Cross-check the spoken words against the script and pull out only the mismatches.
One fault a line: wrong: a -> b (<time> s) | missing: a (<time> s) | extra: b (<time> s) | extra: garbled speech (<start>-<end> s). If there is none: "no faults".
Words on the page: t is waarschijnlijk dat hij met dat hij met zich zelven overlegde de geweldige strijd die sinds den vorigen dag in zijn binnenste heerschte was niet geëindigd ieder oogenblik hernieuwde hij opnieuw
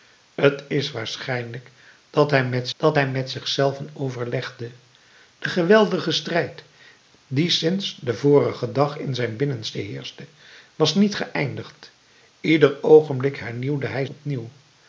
no faults